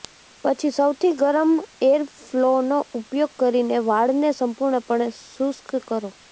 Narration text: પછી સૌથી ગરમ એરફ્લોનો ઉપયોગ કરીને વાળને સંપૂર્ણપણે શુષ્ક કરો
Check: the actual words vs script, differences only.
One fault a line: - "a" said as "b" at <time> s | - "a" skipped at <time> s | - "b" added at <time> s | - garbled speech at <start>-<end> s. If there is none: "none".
none